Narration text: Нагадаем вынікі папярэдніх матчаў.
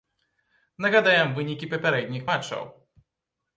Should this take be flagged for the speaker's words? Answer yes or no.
no